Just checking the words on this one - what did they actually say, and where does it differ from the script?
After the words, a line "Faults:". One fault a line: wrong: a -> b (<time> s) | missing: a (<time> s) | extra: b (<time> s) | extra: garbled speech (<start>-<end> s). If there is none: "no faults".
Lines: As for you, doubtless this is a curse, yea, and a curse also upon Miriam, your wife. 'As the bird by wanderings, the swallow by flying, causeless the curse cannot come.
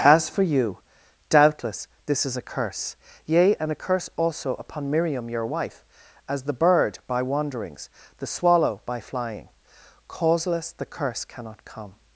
As for you, doubtless this is a curse, yea, and a curse also upon Miriam, your wife. 'As the bird by wanderings, the swallow by flying, causeless the curse cannot come.
Faults:
no faults